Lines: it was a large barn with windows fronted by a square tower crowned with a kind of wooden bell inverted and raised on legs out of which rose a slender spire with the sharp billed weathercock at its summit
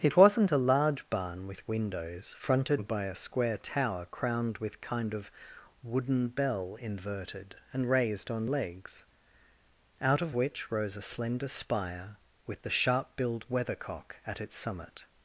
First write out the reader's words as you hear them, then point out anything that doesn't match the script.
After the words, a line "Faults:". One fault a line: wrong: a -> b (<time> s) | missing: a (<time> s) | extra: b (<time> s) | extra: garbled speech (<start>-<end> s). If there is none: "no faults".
it wasn't a large barn with windows fronted by a square tower crowned with kind of wooden bell inverted and raised on legs out of which rose a slender spire with the sharp billed weathercock at its summit
Faults:
wrong: was -> wasn't (0.2 s)
missing: a (4.8 s)